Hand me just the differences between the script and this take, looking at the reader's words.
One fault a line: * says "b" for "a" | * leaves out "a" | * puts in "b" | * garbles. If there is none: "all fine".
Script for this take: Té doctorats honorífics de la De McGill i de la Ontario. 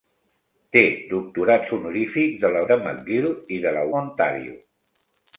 all fine